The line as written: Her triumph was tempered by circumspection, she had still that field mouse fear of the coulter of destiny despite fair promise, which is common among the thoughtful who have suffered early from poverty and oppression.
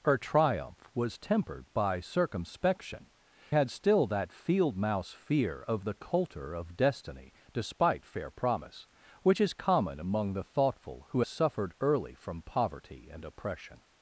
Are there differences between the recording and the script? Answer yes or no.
yes